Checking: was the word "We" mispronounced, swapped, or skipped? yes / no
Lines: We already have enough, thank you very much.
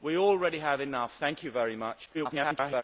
no